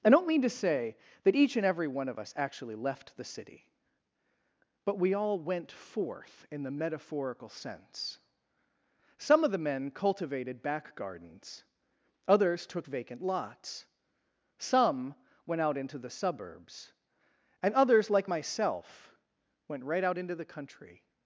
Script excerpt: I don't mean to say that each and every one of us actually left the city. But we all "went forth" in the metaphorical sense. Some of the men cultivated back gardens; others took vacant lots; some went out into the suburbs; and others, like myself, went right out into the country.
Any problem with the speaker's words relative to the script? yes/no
no